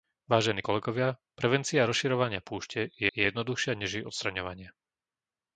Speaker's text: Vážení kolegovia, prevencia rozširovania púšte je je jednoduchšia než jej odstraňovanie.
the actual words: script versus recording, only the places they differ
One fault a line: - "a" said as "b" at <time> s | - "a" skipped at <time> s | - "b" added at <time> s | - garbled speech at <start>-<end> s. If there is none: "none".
none